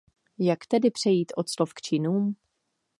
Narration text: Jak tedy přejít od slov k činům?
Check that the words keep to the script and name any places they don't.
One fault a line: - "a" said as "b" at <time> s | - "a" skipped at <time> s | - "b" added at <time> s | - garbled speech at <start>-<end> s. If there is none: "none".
none